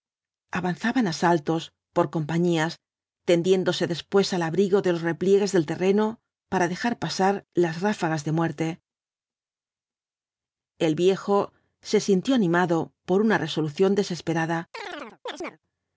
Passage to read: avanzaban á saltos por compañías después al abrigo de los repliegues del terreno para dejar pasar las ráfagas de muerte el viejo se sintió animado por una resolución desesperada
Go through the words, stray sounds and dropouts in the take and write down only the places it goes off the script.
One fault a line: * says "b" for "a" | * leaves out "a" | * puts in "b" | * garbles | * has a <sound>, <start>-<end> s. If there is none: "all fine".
* puts in "tendiéndose"
* has a chirp, 14.7-15.6 s